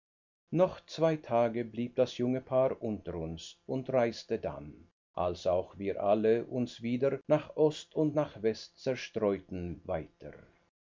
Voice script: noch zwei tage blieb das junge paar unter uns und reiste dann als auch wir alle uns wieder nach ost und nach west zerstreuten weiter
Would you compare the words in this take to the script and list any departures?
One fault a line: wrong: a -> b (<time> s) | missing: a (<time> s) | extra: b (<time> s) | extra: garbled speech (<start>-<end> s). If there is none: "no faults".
no faults